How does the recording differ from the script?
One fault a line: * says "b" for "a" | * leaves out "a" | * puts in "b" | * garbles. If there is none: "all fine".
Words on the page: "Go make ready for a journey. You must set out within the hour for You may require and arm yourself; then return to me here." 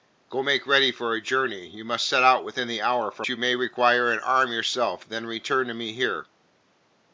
all fine